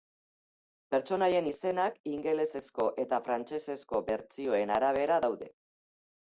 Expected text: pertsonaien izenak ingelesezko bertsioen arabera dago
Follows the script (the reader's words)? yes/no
no